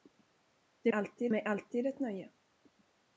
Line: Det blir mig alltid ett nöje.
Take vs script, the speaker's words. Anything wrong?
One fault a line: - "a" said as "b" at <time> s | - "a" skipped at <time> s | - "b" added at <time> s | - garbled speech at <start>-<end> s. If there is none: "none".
- "blir" said as "alltid" at 0.9 s